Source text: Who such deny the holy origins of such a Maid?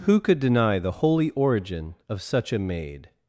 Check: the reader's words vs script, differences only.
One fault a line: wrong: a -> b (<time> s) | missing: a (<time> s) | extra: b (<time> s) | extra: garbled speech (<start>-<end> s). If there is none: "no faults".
wrong: such -> could (0.2 s)
wrong: origins -> origin (1.3 s)